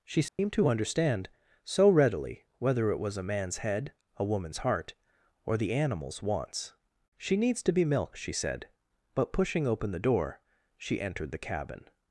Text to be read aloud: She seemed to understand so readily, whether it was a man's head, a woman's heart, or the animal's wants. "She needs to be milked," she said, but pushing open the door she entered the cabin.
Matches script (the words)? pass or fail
pass